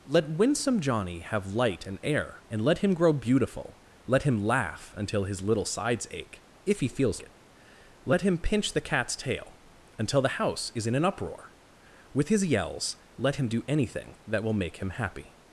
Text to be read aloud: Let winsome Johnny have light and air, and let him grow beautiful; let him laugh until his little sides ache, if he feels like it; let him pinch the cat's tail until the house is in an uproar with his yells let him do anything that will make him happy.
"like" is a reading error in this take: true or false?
true